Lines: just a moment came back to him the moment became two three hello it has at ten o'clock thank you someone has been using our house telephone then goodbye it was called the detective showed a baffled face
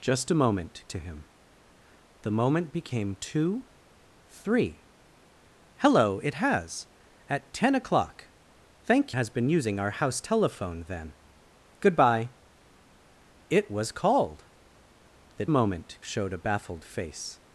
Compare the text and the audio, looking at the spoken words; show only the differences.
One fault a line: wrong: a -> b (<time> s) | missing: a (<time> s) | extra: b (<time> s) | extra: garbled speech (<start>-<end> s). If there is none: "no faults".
missing: came back (0.8 s)
missing: you someone (9.2 s)
wrong: detective -> moment (15.5 s)